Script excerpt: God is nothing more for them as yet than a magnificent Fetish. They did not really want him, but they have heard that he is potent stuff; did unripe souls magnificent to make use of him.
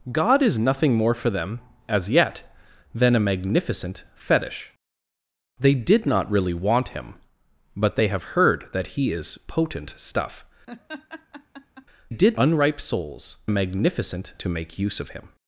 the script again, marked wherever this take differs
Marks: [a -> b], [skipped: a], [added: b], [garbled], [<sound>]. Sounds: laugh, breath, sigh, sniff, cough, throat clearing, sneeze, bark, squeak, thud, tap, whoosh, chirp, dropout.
God is nothing more for them as yet than a magnificent Fetish. They did not really want him, but they have heard that he is potent stuff; [laugh] did unripe souls magnificent to make use of him.